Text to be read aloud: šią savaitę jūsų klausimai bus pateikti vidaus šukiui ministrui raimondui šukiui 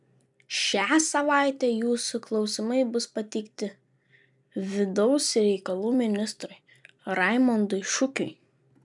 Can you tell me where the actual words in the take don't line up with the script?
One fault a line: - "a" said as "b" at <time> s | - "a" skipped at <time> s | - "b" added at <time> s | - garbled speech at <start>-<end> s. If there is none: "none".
- "šukiui" said as "reikalų" at 5.4 s